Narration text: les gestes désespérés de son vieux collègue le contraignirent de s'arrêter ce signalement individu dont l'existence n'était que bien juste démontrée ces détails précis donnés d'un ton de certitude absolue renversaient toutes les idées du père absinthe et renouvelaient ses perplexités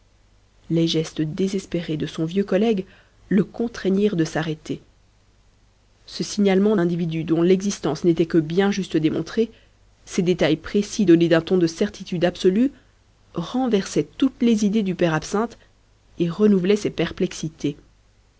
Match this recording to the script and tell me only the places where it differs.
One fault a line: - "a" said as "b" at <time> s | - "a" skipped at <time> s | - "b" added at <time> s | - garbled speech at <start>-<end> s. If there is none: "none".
none